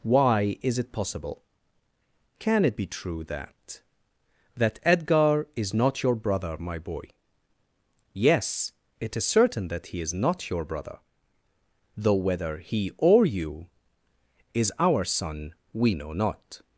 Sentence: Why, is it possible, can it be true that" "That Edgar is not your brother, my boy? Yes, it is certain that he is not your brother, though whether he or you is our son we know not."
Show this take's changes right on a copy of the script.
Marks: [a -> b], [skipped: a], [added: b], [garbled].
Why, is it possible, can it be true that" "That Edgar is not your brother, my boy? Yes, it is certain that he is not your brother, though whether he or you is our son we know not."